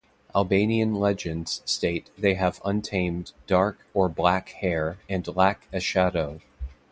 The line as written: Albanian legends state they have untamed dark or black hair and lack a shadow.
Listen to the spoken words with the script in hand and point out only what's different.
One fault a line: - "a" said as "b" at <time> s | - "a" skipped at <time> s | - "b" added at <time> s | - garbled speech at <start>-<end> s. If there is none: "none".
none